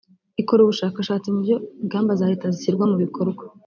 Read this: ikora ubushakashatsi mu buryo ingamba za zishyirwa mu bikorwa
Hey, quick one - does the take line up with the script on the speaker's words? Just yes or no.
no